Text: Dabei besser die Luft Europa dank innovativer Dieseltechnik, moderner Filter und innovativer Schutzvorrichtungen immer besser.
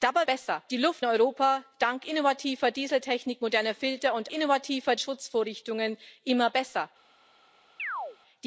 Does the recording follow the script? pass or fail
pass